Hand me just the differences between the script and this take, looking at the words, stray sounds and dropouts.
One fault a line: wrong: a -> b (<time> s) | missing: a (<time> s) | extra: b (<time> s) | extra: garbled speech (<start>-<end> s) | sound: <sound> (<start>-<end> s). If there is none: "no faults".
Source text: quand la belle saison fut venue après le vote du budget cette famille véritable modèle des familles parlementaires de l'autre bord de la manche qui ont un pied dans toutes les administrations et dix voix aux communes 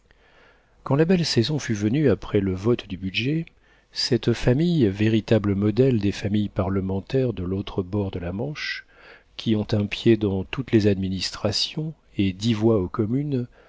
no faults